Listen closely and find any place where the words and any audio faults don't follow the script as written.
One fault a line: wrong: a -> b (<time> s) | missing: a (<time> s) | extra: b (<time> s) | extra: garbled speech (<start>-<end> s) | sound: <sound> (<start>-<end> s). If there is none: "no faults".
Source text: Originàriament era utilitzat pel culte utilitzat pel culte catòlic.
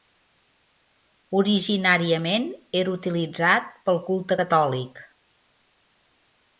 missing: utilitzat pel culte (4.4 s)